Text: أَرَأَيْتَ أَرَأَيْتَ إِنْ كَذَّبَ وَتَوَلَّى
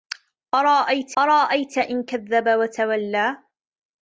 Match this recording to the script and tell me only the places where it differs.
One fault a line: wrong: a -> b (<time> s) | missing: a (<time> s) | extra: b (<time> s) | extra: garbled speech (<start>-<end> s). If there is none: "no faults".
no faults